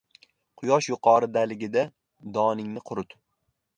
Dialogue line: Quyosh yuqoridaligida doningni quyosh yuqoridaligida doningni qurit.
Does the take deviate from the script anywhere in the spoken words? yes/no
yes